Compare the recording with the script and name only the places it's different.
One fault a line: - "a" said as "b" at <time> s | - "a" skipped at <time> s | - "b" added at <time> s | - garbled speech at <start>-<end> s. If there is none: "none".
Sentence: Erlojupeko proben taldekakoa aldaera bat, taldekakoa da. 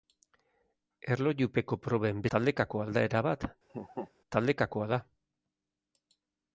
none